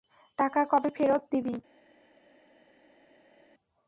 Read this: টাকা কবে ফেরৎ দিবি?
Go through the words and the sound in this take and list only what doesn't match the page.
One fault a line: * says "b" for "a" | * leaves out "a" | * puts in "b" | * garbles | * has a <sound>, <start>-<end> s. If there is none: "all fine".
all fine